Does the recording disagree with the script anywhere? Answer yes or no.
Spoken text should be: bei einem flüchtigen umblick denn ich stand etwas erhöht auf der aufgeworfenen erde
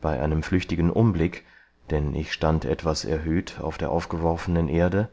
no